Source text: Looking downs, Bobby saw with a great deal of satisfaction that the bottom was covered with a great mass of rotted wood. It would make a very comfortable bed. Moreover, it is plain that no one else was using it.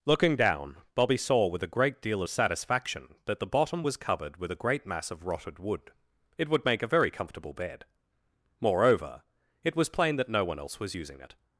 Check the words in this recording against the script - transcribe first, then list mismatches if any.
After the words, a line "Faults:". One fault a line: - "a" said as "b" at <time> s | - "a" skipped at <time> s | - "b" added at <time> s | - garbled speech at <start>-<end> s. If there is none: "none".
Looking down, Bobby saw with a great deal of satisfaction that the bottom was covered with a great mass of rotted wood. It would make a very comfortable bed. Moreover, it was plain that no one else was using it.
Faults:
- "downs" said as "down" at 0.3 s
- "is" said as "was" at 9.8 s